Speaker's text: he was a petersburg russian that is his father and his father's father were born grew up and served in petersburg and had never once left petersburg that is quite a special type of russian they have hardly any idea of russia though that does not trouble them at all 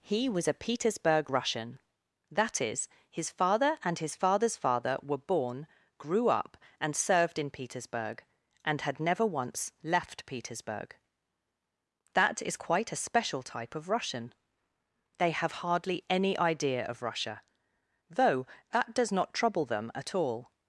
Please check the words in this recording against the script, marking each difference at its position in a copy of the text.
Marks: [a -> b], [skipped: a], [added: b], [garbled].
he was a petersburg russian that is his father and his father's father were born grew up and served in petersburg and had never once left petersburg that is quite a special type of russian they have hardly any idea of russia though that does not trouble them at all